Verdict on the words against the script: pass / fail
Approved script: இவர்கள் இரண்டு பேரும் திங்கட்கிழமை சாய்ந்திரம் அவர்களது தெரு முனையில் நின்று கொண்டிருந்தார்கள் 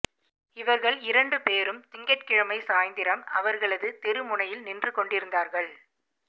pass